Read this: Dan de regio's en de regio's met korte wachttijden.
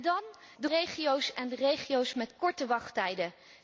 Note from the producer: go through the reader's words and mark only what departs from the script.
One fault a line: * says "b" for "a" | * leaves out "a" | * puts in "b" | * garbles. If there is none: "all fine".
all fine